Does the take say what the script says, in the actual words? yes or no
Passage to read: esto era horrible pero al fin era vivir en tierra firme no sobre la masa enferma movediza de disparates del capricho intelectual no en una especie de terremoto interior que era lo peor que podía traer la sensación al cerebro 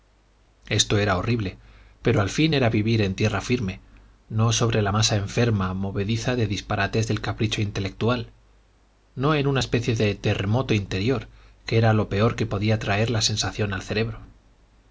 yes